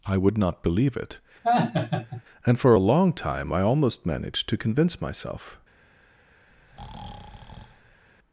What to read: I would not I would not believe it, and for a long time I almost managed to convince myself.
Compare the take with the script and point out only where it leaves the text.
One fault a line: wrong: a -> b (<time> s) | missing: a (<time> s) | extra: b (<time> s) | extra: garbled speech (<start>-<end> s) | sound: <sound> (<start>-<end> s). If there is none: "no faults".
missing: I would not (0.6 s)
sound: laugh (1.4-2.2 s)
sound: breath (6.5-8.0 s)